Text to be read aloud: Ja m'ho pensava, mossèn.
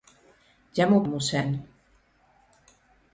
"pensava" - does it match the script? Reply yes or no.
no